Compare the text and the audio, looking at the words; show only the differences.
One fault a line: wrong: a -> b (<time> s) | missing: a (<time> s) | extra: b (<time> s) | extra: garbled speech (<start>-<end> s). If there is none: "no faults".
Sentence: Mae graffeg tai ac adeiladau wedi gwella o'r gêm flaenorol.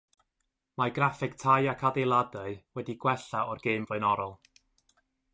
no faults